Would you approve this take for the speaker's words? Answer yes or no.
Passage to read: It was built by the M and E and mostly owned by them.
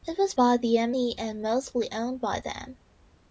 no